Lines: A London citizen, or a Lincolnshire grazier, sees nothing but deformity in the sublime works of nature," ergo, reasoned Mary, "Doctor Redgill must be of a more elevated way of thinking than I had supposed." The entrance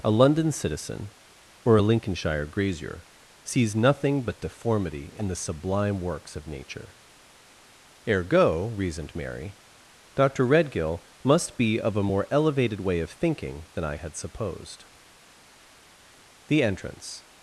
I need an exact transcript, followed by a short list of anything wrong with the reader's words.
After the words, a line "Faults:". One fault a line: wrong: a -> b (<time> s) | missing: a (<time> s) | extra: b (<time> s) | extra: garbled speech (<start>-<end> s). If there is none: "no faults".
A London citizen, or a Lincolnshire grazier, sees nothing but deformity in the sublime works of nature," ergo, reasoned Mary, "Doctor Redgill must be of a more elevated way of thinking than I had supposed." The entrance
Faults:
no faults